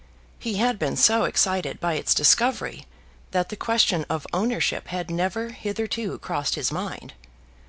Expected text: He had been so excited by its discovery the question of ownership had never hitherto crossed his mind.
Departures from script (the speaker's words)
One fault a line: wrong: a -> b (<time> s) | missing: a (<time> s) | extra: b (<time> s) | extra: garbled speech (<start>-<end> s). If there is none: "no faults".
extra: that (3.3 s)